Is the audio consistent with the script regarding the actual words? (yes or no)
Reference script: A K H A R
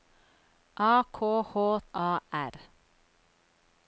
yes